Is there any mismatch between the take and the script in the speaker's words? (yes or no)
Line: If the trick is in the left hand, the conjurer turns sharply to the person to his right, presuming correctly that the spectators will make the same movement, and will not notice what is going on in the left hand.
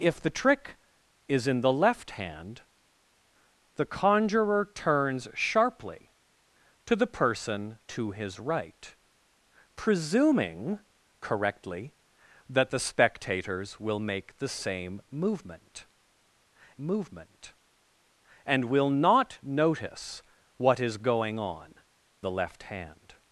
yes